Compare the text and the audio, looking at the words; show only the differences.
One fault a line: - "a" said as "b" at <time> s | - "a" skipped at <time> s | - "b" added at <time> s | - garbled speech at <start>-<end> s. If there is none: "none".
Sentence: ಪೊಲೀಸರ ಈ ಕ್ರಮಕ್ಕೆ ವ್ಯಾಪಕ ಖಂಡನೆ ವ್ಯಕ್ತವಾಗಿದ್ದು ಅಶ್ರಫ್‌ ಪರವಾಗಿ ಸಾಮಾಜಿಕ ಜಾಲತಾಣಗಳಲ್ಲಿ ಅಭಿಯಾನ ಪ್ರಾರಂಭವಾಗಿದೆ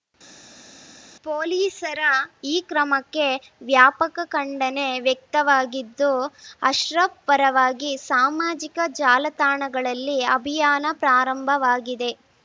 none